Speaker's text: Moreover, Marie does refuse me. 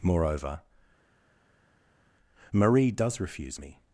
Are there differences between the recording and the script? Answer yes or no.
no